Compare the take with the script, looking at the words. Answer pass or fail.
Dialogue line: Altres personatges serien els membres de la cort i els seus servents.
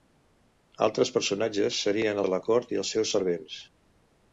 fail